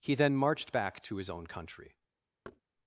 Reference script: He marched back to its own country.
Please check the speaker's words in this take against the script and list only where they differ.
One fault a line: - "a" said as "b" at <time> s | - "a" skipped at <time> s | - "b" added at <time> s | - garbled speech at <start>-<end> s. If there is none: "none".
- "then" added at 0.1 s
- "its" said as "his" at 1.2 s